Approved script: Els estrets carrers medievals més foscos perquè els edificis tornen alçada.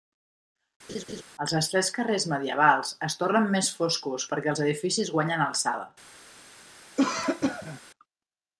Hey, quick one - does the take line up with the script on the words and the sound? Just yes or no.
no